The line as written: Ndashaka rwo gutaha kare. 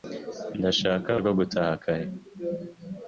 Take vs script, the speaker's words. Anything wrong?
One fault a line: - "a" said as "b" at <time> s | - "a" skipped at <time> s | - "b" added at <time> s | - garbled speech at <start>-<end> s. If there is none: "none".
none